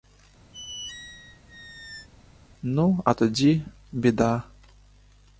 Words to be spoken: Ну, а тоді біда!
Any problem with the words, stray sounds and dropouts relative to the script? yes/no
yes